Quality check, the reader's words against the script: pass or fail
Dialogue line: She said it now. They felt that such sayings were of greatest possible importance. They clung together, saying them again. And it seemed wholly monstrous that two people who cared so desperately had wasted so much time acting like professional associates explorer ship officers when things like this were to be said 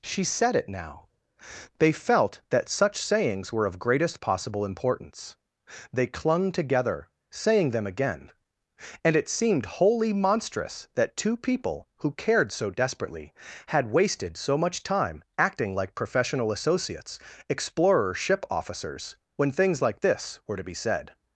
pass